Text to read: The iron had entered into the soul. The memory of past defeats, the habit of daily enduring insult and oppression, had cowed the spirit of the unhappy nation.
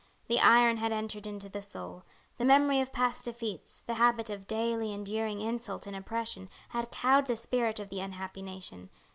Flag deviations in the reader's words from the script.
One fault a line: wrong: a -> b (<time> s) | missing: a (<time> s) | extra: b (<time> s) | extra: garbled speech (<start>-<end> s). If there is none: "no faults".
no faults